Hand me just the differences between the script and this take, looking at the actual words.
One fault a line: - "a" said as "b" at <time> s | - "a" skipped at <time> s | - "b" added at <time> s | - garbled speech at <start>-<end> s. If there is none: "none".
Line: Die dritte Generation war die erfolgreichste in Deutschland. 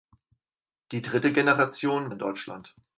- "war die erfolgreichste" skipped at 2.1 s